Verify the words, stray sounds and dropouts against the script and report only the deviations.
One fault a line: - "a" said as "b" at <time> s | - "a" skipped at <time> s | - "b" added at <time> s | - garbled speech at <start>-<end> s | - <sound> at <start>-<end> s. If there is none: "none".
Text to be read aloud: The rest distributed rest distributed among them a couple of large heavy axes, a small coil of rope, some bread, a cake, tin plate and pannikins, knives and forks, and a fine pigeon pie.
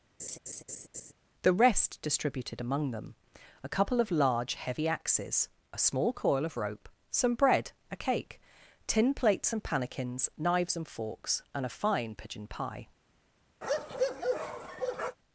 - laugh at 0.2-1.1 s
- "rest distributed" skipped at 2.6 s
- "plate" said as "plates" at 9.1 s
- bark at 13.6-15.2 s